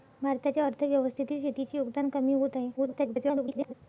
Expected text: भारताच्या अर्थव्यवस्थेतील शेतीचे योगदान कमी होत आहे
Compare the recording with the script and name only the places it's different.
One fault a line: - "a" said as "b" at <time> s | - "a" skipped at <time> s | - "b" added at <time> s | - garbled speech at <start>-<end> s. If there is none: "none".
- garbled speech at 2.8-3.7 s